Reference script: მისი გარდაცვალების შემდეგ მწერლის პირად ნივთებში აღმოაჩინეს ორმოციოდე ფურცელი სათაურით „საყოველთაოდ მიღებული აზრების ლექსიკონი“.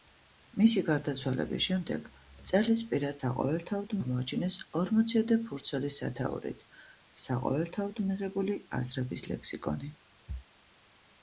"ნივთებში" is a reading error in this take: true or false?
true